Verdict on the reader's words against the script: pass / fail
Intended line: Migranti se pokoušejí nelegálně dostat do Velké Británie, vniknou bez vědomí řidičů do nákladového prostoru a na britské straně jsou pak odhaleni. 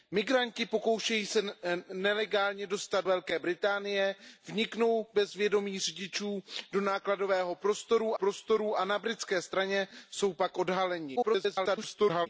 fail